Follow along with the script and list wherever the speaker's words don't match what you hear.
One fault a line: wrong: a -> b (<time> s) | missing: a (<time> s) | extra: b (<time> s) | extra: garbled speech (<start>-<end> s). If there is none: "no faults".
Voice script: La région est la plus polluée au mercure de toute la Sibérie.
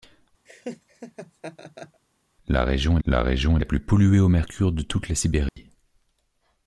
extra: la région (3.0 s)